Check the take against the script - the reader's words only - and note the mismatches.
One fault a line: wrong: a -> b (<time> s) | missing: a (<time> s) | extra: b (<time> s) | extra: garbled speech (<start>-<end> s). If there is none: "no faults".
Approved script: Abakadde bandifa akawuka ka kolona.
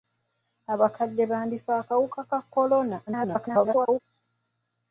extra: garbled speech (3.1-4.0 s)